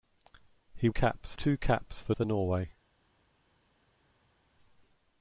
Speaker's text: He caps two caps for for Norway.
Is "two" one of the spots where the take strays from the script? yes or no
no